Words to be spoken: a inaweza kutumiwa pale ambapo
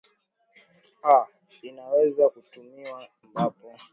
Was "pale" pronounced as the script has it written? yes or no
no